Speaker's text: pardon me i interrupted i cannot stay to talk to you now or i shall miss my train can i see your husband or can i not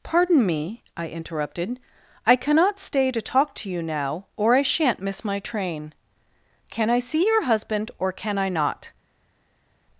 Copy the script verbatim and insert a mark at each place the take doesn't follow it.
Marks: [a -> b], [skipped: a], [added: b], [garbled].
pardon me i interrupted i cannot stay to talk to you now or i [shall -> shan't] miss my train can i see your husband or can i not